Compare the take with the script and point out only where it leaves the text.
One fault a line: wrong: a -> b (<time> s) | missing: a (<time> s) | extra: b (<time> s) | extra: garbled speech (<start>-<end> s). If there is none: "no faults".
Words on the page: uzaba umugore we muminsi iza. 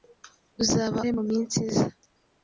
missing: umugore (1.0 s)